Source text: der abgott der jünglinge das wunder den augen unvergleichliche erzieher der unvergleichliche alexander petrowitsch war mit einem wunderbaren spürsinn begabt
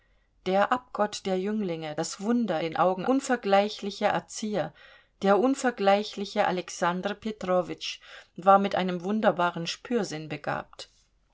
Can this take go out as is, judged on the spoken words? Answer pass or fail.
pass